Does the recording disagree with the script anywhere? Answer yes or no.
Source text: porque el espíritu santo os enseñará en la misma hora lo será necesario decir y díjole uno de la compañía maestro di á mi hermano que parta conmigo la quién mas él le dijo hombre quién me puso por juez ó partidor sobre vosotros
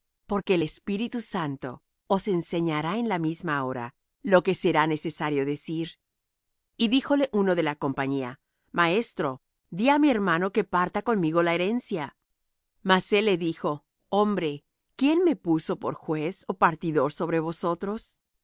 yes